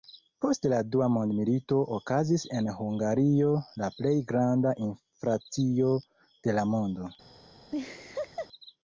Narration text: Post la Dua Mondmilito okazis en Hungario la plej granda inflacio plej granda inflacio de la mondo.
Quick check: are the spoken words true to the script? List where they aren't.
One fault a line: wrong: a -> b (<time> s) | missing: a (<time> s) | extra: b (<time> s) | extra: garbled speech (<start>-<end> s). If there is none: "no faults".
missing: plej granda inflacio (5.9 s)